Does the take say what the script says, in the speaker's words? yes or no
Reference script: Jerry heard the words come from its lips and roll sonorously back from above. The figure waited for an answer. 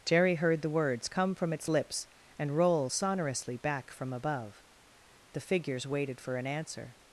no